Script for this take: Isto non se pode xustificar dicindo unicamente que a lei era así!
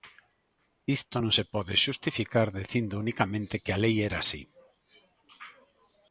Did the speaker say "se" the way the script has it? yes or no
yes